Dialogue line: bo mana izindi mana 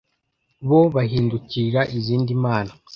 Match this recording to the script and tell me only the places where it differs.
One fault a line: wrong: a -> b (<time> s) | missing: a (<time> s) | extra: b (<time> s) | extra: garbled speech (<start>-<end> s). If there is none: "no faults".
wrong: mana -> bahindukirira (0.9 s)